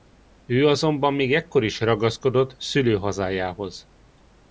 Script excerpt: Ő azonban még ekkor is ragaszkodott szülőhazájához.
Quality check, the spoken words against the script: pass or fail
pass